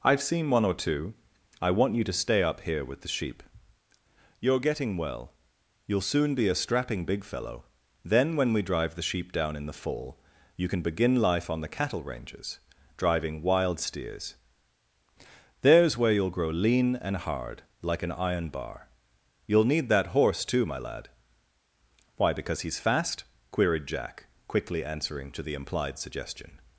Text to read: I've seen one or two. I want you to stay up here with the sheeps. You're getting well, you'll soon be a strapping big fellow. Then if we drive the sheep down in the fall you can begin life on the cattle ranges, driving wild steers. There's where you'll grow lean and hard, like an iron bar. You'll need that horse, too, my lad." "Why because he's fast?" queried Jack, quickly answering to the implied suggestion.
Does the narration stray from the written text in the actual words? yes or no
yes